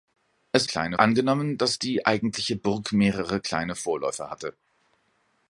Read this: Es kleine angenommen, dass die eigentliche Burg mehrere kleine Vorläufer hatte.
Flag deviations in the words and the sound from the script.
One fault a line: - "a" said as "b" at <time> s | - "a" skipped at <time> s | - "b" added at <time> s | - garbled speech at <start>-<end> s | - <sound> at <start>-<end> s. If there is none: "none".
none